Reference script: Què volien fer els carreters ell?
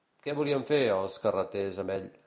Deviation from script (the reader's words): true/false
true